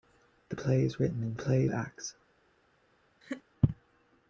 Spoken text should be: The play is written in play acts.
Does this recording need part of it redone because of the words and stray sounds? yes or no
yes